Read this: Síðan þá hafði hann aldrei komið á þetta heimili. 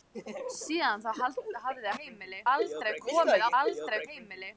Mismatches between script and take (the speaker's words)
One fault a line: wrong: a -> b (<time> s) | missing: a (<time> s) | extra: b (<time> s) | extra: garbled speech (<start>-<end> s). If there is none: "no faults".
wrong: hann -> heimili (2.0 s)
wrong: þetta -> aldrei (3.6 s)